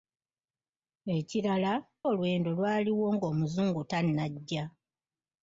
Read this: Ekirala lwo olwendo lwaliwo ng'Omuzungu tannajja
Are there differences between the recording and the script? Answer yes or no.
yes